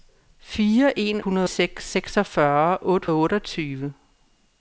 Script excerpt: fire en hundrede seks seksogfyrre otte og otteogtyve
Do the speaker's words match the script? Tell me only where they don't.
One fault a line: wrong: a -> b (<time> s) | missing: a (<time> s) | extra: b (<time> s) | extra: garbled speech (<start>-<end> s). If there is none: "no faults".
no faults